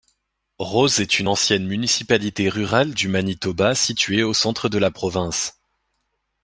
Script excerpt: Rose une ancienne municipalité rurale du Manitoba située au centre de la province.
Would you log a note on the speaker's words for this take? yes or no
yes